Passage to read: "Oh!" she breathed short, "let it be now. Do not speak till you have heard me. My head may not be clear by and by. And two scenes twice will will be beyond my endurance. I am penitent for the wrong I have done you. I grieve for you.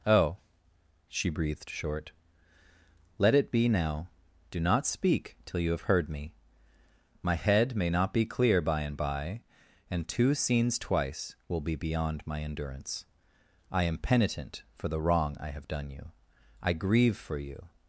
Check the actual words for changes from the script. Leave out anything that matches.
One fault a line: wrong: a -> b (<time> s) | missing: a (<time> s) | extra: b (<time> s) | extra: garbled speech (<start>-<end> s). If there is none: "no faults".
missing: will (11.6 s)